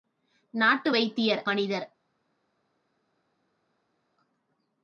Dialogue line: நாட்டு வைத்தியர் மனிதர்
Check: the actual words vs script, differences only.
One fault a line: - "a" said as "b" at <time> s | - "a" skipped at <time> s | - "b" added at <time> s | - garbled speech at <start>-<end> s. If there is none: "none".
none